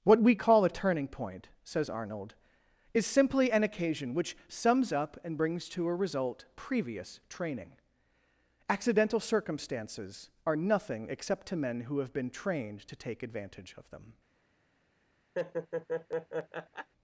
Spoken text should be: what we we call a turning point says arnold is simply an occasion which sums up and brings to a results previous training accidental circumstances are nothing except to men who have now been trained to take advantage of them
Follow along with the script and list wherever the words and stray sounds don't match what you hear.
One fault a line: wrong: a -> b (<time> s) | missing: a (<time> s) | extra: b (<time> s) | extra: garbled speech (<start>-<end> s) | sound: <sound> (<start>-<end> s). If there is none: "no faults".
missing: we (0.3 s)
wrong: results -> result (5.9 s)
missing: now (12.1 s)
sound: laugh (15.3-16.9 s)